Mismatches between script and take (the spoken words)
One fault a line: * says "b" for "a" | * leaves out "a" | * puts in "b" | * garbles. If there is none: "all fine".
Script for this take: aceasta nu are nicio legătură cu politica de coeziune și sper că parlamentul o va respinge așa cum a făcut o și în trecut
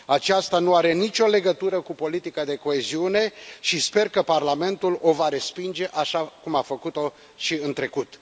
all fine